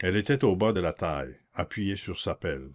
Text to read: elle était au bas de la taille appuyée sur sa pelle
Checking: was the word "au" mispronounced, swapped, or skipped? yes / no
no